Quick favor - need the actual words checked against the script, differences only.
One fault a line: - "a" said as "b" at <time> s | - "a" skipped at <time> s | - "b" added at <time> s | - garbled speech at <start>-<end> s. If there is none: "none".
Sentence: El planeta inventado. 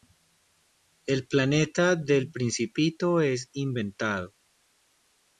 - "del Principito es" added at 1.9 s